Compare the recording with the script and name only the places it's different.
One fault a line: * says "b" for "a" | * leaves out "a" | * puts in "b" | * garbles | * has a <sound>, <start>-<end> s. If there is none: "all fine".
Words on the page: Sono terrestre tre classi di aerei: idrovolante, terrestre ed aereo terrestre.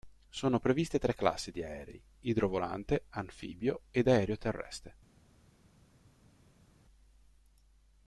* says "previste" for "terrestre"
* says "anfibio" for "terrestre"